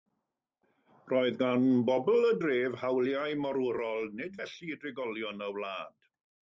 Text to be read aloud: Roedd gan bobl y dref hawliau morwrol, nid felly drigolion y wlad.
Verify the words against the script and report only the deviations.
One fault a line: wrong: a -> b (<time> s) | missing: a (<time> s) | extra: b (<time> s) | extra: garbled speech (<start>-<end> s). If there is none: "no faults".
no faults